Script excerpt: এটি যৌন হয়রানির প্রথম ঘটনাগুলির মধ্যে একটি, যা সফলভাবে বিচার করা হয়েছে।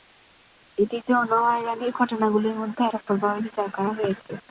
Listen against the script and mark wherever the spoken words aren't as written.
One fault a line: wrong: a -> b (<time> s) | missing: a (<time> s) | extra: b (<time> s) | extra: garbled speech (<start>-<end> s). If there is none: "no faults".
missing: প্রথম (1.9 s)
missing: একটি যা (2.8 s)